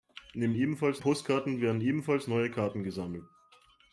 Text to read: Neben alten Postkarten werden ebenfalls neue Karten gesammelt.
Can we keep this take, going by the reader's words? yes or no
no